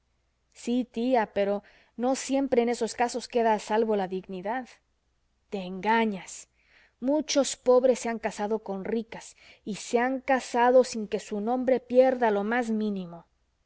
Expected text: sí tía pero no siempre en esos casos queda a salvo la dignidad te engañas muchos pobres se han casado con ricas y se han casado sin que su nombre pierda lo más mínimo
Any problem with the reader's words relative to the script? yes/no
no